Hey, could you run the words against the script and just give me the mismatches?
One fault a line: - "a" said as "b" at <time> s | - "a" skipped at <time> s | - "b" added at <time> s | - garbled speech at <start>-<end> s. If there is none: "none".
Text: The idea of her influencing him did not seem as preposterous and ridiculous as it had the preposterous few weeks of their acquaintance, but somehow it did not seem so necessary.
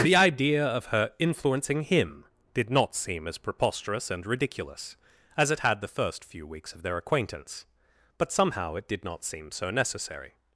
- "preposterous" said as "first" at 5.9 s